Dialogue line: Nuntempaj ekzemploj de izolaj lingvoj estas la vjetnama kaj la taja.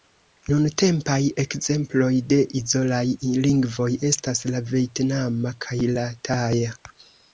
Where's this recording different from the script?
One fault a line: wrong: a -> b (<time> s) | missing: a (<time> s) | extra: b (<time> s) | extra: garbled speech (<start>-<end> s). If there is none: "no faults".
no faults